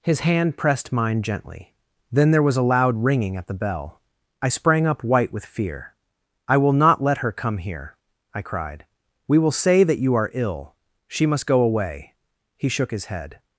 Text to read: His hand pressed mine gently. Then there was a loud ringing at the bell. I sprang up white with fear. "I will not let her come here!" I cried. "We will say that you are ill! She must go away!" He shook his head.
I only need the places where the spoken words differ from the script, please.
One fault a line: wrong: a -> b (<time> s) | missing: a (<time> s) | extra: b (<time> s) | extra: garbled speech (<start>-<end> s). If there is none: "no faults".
no faults